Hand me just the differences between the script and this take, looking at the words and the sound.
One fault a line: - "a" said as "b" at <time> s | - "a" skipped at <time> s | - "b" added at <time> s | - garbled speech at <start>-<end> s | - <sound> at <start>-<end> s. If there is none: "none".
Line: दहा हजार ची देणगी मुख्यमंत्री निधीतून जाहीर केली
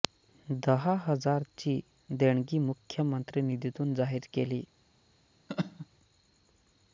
- laugh at 5.5-5.9 s